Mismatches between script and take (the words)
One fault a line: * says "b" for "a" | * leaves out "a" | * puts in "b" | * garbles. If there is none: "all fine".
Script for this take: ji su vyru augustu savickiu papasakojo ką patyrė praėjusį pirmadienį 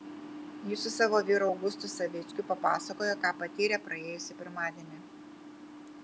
* puts in "savo"